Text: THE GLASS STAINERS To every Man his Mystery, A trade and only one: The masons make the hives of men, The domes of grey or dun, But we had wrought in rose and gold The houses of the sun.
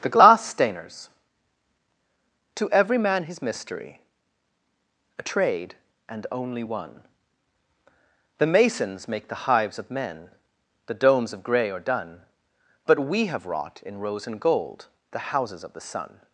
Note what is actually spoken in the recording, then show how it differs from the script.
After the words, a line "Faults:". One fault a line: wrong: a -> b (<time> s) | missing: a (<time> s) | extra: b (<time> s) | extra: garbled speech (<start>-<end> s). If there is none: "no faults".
THE GLASS STAINERS To every Man his Mystery, A trade and only one: The masons make the hives of men, The domes of grey or dun, But we have wrought in rose and gold The houses of the sun.
Faults:
wrong: had -> have (13.3 s)